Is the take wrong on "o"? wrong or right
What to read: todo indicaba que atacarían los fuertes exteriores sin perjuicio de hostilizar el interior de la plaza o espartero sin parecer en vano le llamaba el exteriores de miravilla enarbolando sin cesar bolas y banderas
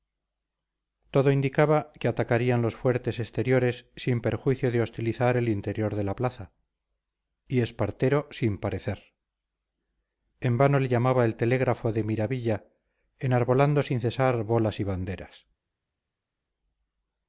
wrong